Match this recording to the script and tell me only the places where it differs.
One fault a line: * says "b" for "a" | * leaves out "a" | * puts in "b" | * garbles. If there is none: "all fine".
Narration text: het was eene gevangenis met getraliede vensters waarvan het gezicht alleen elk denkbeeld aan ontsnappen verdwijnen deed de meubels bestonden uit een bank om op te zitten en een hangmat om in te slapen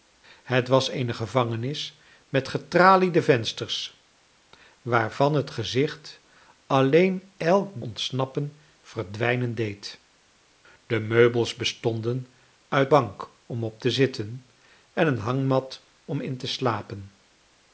* leaves out "denkbeeld aan"
* leaves out "een"